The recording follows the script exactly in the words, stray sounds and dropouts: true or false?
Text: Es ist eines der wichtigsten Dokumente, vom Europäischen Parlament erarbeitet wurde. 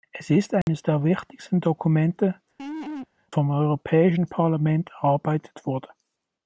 false